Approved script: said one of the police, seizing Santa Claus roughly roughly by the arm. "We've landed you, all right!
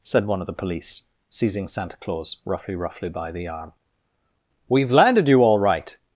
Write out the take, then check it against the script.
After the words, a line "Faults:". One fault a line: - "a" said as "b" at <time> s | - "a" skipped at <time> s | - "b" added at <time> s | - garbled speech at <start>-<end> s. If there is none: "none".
said one of the police, seizing Santa Claus roughly roughly by the arm. "We've landed you, all right!
Faults:
none